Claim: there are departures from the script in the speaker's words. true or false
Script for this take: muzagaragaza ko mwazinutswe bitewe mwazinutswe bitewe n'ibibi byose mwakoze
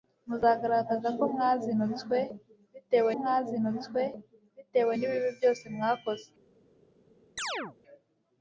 false